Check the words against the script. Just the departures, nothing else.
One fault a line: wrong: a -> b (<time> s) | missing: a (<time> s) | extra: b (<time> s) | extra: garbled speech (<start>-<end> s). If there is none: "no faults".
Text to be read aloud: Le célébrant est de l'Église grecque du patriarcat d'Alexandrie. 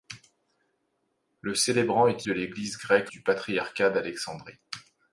no faults